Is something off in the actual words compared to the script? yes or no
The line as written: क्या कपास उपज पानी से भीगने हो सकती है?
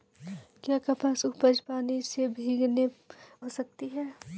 no